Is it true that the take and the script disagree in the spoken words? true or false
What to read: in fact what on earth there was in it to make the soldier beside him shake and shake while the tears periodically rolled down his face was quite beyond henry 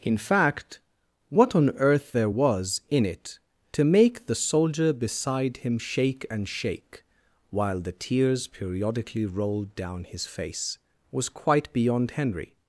false